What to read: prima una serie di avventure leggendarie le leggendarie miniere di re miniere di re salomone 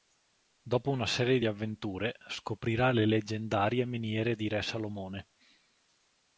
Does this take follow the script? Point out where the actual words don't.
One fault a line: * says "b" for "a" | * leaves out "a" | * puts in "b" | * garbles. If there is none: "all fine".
* says "dopo" for "prima"
* says "scoprirà" for "leggendarie"
* leaves out "miniere di re"